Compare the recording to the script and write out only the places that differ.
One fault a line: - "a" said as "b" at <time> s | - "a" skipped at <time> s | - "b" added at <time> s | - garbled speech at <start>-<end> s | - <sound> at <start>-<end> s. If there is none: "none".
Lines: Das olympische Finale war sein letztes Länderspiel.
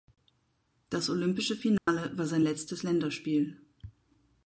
- dropout at 1.8-1.9 s